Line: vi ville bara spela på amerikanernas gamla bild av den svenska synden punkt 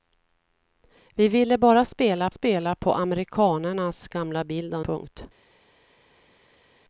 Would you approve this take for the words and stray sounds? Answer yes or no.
no